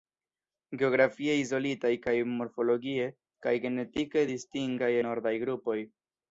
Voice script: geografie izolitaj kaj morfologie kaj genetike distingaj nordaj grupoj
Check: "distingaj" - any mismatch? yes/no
no